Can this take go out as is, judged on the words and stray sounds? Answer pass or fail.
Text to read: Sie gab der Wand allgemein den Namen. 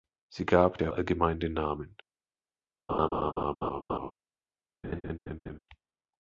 fail